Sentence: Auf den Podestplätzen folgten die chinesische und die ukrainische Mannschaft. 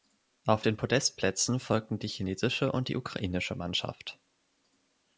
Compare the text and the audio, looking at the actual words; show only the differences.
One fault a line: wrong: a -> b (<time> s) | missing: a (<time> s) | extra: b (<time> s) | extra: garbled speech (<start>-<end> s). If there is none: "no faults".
no faults